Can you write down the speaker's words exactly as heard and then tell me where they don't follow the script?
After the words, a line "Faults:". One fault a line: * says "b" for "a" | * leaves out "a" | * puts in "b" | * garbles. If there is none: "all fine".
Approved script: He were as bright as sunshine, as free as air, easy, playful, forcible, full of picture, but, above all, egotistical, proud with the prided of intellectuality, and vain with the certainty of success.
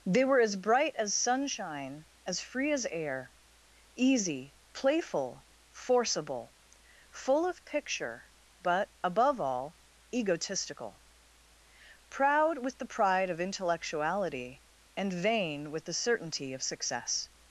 They were as bright as sunshine, as free as air, easy, playful, forcible, full of picture, but, above all, egotistical, proud with the pride of intellectuality, and vain with the certainty of success.
Faults:
* says "They" for "He"
* says "pride" for "prided"